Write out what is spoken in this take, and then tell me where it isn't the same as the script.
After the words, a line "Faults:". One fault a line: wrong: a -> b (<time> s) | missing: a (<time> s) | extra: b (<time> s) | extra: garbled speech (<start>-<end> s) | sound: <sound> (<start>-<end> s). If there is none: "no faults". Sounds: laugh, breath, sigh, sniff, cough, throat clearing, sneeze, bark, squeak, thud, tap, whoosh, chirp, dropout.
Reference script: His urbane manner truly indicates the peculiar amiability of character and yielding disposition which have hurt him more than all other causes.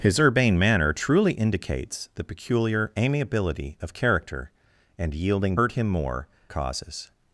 His urbane manner truly indicates the peculiar amiability of character and yielding hurt him more causes.
Faults:
missing: disposition which have (5.5 s)
missing: than all other (6.3 s)